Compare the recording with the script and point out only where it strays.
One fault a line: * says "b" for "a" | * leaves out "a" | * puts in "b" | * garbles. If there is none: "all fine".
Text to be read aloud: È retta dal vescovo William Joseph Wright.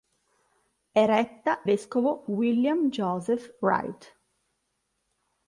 * leaves out "dal"